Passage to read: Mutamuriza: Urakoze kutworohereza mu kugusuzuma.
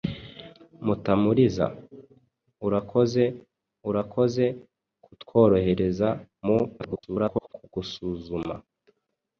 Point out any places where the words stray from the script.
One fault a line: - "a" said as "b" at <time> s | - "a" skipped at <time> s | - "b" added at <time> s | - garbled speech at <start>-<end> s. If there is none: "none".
- "Urakoze" added at 3.9 s
- garbled speech at 6.8-7.5 s